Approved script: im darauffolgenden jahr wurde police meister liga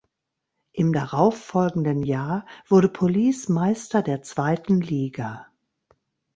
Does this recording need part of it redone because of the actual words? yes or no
yes